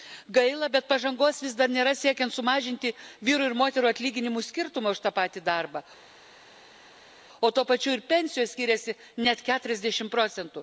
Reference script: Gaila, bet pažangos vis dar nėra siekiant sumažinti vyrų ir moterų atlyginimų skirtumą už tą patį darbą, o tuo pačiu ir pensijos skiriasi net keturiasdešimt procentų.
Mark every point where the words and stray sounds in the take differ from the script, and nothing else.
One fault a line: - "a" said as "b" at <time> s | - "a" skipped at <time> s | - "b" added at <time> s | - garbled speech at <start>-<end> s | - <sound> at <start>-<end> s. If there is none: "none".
none